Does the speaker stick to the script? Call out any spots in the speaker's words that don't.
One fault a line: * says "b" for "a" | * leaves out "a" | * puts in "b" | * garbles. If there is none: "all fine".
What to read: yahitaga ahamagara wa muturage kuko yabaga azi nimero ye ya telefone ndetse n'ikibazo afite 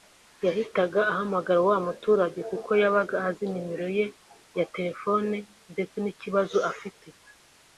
all fine